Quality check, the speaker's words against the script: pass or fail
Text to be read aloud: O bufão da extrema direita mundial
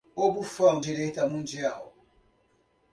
fail